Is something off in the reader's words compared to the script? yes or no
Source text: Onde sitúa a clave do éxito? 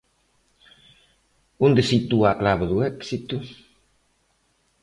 no